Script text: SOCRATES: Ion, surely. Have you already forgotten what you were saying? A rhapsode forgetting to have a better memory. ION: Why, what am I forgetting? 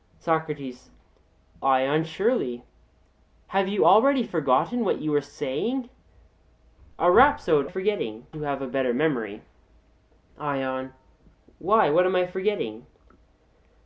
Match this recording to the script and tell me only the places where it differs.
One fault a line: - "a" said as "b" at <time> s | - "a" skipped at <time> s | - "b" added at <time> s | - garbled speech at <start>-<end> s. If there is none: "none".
none